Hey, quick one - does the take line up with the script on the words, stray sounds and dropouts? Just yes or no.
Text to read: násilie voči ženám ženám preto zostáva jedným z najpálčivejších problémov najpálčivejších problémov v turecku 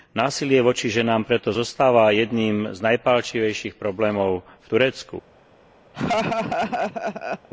no